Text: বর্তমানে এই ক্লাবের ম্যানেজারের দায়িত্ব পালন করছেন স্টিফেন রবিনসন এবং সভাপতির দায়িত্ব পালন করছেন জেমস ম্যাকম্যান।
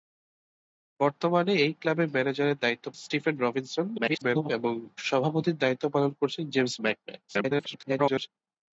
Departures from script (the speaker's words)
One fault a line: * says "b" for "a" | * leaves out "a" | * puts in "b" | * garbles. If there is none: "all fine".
* leaves out "পালন করছেন"
* garbles
* garbles